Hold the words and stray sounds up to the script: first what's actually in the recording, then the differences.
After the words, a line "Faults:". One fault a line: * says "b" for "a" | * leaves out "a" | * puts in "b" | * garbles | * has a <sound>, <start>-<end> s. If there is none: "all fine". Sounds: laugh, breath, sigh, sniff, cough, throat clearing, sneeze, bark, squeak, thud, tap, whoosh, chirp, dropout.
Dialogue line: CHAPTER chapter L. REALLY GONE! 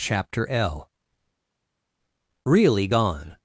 CHAPTER L. REALLY GONE!
Faults:
* leaves out "chapter"